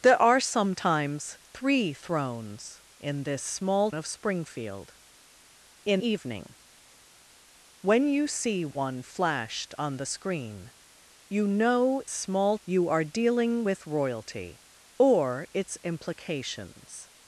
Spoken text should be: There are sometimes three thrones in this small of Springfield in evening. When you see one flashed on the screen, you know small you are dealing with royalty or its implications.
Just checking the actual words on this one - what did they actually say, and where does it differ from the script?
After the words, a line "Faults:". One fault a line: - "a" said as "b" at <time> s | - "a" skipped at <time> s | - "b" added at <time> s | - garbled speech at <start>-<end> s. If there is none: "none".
There are sometimes three thrones in this small of Springfield in evening. When you see one flashed on the screen, you know small you are dealing with royalty or its implications.
Faults:
none